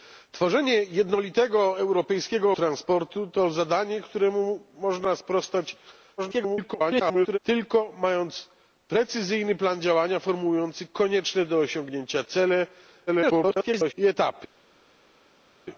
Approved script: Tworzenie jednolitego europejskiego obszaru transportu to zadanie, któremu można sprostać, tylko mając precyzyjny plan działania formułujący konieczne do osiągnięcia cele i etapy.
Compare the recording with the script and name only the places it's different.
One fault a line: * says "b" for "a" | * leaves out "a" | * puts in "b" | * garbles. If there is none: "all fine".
* leaves out "obszaru"
* garbles
* garbles